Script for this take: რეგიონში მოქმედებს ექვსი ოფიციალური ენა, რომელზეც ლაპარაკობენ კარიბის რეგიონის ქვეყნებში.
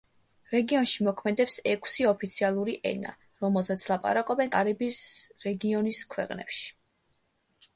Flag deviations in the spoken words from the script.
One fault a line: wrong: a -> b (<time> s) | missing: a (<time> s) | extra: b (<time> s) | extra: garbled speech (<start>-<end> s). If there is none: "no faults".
no faults